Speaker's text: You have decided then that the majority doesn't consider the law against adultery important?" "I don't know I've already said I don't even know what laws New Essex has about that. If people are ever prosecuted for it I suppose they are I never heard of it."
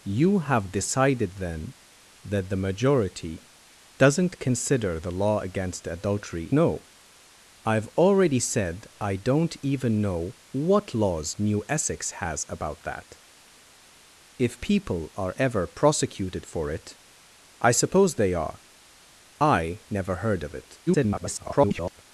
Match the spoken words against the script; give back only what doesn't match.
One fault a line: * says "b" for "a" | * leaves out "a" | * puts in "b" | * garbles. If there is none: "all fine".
* leaves out "important I don't"
* garbles